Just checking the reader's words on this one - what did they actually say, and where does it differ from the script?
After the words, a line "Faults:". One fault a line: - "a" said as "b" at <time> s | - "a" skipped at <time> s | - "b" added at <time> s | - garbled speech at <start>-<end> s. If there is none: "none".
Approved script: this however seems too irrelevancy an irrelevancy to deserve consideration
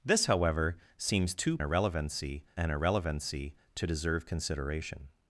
this however seems too irrelevancy an irrelevancy to deserve consideration
Faults:
none